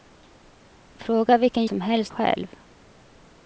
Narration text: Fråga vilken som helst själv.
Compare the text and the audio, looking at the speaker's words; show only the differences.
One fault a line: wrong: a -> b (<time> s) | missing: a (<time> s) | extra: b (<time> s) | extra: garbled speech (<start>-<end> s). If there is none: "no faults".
no faults